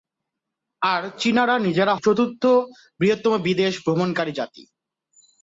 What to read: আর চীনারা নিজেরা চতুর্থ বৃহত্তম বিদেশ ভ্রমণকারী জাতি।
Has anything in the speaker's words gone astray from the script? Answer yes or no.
no